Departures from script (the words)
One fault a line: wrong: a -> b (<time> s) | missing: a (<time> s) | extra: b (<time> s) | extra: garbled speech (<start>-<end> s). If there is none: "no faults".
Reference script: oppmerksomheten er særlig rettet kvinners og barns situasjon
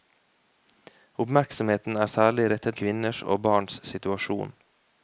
no faults